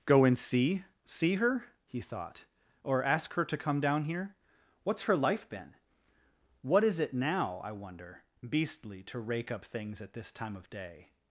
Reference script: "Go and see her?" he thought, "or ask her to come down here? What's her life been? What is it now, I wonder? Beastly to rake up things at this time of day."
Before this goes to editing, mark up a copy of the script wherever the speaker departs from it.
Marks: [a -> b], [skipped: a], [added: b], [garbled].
"Go and see [added: see] her?" he thought, "or ask her to come down here? What's her life been? What is it now, I wonder? Beastly to rake up things at this time of day."